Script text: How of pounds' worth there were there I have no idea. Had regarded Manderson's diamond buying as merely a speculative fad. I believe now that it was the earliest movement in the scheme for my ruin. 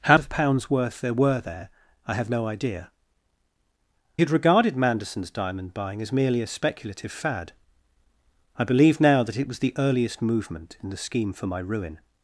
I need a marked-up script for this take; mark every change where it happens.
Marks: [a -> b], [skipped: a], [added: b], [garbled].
How of pounds' worth there were there I have no idea. Had regarded Manderson's diamond buying as merely a speculative fad. I believe now that it was the earliest movement in the scheme for my ruin.